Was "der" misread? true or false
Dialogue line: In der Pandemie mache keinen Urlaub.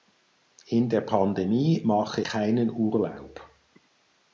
false